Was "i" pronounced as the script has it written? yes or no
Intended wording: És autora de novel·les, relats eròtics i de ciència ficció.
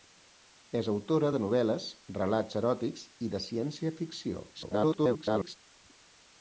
yes